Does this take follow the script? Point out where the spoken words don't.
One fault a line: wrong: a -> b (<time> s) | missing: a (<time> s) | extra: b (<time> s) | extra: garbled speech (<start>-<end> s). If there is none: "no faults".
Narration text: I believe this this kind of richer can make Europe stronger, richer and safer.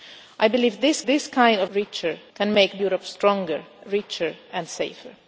no faults